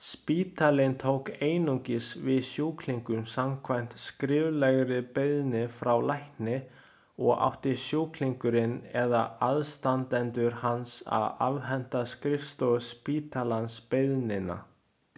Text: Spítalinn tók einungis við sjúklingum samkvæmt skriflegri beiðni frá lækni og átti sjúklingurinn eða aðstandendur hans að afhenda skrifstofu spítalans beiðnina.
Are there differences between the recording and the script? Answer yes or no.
no